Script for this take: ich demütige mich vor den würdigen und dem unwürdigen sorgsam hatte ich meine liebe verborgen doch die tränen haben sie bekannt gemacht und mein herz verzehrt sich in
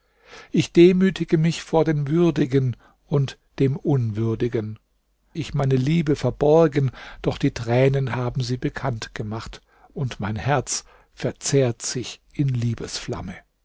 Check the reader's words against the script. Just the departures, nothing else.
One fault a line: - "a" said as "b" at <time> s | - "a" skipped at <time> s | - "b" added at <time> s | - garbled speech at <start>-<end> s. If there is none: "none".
- "sorgsam hatte" skipped at 4.8 s